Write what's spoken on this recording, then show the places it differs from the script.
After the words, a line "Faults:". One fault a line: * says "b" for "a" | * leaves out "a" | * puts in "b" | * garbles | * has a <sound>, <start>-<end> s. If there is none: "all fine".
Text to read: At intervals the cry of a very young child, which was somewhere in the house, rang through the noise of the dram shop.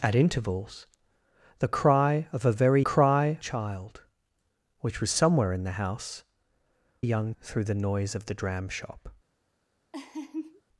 At intervals the cry of a very cry child, which was somewhere in the house, young through the noise of the dram shop.
Faults:
* says "cry" for "young"
* says "young" for "rang"
* has a laugh, 9.9-10.6 s